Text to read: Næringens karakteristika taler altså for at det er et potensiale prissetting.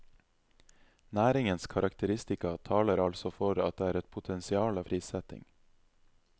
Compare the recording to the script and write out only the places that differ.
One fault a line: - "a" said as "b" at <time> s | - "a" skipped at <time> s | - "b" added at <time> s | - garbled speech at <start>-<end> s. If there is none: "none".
none